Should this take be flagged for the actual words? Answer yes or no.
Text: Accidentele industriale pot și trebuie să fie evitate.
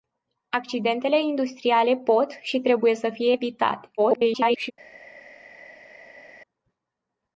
yes